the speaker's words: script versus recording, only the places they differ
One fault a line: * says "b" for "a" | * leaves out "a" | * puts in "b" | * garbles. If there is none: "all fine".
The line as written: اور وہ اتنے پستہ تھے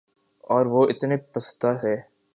all fine